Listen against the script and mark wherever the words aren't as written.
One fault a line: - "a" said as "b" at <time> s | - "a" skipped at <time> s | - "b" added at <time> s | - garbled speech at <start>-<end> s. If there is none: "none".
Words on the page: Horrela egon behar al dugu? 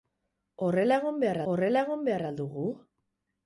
- "horrela egon behar" added at 1.5 s